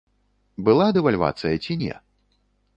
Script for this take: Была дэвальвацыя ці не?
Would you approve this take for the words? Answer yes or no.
yes